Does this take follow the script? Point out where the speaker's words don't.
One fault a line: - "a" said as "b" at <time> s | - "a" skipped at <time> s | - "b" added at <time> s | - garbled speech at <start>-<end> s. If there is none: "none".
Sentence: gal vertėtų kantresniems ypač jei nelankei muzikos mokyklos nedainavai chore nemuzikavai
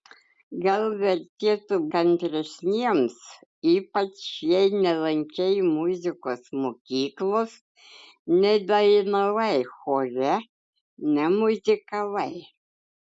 none